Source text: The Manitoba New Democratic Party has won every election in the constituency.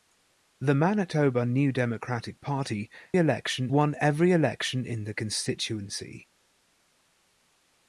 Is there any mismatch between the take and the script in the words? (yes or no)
yes